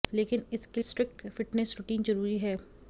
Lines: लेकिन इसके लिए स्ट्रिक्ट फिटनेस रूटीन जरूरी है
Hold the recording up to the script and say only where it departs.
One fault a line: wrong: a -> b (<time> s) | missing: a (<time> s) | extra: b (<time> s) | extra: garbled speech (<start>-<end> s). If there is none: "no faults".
missing: लिए (0.8 s)